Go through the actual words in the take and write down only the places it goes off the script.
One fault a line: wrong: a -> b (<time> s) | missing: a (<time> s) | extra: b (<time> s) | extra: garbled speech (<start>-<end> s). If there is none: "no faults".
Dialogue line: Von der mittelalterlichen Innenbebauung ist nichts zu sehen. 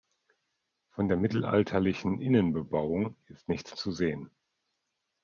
no faults